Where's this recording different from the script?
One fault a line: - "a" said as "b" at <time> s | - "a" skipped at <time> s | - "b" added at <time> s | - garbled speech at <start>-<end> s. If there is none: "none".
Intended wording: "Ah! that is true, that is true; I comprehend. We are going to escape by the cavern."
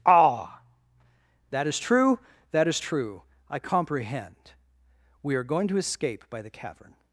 none